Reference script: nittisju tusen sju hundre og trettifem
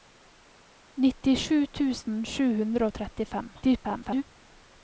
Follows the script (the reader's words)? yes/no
no